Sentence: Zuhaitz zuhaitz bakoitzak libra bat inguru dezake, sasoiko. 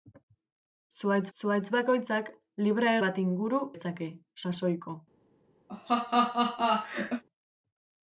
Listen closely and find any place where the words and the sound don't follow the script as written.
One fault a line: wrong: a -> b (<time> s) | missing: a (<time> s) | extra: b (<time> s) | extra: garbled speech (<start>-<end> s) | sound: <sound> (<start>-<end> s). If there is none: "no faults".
sound: laugh (5.7-7.2 s)